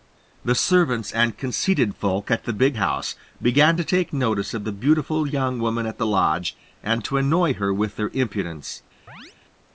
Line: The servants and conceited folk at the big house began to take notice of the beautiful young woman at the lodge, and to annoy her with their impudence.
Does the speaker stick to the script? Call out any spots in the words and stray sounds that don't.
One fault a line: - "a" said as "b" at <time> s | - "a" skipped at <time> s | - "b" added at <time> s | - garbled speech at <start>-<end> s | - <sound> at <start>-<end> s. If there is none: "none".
- chirp at 9.1-9.4 s